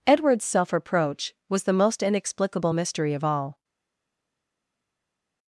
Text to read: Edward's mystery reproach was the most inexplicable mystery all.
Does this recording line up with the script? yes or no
no